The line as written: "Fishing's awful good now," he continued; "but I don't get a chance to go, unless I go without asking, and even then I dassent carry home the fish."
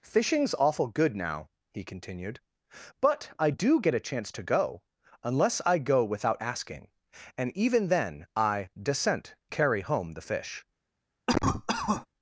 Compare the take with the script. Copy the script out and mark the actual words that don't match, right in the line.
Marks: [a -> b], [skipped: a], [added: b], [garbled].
"Fishing's awful good now," he continued; "but I [don't -> do] get a chance to go, unless I go without asking, and even then I dassent carry home the fish."